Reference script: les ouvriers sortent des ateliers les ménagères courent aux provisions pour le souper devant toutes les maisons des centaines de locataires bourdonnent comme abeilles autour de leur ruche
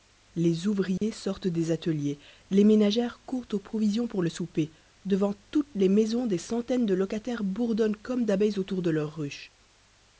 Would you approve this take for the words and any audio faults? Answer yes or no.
no